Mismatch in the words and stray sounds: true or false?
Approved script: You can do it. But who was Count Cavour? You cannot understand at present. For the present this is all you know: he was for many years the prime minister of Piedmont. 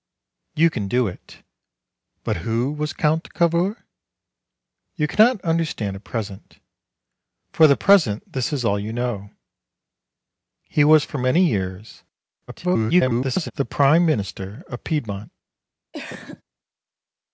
true